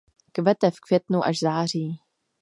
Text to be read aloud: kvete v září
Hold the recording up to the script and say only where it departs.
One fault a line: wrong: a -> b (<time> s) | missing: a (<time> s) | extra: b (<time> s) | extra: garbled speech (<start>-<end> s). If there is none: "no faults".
extra: květnu až (0.8 s)